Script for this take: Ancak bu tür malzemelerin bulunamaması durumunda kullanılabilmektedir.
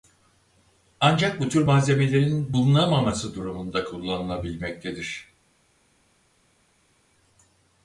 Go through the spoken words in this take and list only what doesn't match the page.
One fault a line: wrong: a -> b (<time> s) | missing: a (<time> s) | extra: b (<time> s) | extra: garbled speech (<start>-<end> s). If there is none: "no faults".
no faults